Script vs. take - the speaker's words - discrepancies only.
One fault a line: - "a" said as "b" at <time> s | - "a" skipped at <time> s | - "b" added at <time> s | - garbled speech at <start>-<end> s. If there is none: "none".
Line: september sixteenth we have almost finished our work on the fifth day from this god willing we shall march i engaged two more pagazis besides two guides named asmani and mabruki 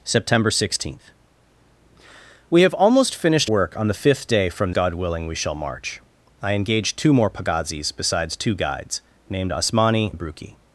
- "our" skipped at 3.5 s
- "this" skipped at 4.7 s
- "and" skipped at 10.1 s